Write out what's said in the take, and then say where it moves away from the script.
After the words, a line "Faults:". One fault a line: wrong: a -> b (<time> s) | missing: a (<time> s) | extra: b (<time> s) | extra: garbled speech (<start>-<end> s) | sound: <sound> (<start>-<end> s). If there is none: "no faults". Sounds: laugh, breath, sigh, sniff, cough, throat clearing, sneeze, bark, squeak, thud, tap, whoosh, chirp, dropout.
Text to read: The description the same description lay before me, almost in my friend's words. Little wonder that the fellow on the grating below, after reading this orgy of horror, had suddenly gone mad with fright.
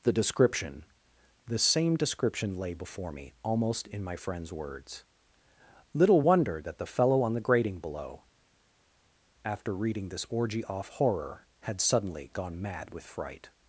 The description the same description lay before me, almost in my friend's words. Little wonder that the fellow on the grating below, after reading this orgy off horror, had suddenly gone mad with fright.
Faults:
wrong: of -> off (10.6 s)